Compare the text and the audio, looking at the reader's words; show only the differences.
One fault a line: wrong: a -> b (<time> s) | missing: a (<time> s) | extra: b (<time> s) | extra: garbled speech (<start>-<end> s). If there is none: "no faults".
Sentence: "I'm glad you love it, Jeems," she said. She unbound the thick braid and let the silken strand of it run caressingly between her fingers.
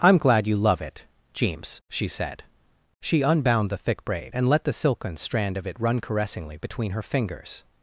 no faults